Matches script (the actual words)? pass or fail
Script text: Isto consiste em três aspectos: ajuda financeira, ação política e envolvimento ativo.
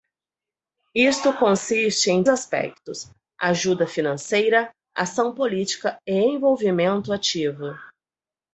fail